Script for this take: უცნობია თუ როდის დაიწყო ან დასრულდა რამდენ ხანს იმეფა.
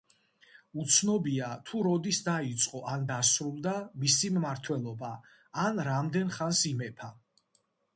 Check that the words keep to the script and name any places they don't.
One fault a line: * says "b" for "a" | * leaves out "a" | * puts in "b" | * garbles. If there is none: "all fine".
* puts in "მისი მმართველობა ან"